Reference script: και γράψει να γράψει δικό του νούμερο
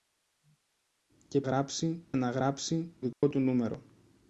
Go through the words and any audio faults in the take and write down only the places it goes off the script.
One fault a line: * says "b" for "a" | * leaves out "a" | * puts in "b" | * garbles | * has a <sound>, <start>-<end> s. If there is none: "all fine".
* has a dropout, 3.1-3.2 s